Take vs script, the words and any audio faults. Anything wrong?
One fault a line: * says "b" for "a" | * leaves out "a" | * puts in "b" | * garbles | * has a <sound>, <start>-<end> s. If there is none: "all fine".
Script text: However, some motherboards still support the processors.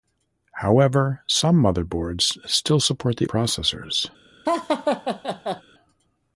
* has a laugh, 4.5-5.6 s